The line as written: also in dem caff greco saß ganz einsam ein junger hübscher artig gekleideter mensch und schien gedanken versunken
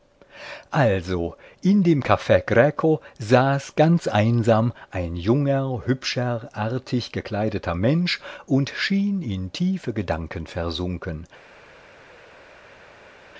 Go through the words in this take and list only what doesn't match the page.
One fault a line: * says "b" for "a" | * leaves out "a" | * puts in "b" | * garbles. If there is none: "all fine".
* puts in "in tiefe"